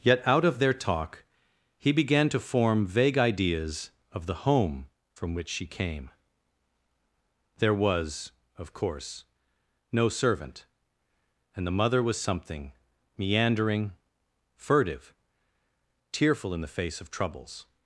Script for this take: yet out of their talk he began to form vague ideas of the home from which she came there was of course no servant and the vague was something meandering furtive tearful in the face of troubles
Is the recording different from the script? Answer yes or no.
yes